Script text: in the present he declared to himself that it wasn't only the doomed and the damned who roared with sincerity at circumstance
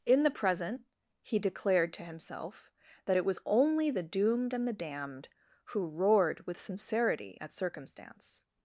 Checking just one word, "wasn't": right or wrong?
wrong